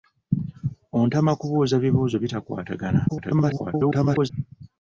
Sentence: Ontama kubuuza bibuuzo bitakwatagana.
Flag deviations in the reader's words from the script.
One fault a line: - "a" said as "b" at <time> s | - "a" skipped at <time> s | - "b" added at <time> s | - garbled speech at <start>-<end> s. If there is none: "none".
- garbled speech at 3.1-4.3 s